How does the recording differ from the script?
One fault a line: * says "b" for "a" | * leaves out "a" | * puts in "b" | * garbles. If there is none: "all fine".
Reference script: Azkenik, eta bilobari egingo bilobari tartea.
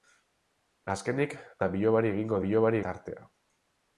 all fine